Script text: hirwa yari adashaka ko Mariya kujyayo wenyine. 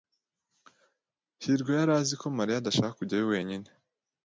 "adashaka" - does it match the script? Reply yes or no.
no